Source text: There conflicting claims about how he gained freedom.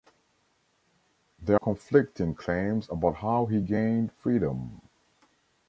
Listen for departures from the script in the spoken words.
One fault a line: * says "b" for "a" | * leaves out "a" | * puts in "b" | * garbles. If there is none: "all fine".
all fine